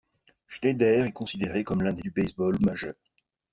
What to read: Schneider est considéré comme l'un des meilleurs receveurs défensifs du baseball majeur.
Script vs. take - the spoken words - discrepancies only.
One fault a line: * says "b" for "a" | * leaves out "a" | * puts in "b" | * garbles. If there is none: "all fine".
* leaves out "meilleurs receveurs défensifs"